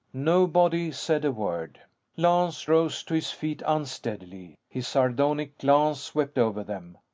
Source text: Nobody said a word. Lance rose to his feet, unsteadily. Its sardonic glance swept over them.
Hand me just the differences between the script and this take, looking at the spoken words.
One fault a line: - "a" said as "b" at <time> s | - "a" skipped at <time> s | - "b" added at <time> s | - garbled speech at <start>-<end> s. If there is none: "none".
- "Its" said as "His" at 4.7 s